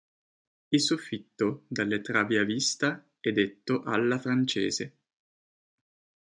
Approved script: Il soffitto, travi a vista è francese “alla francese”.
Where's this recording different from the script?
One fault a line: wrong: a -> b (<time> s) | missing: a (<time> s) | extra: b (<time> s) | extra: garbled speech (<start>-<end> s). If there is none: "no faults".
extra: dalle (1.7 s)
wrong: francese -> detto (3.3 s)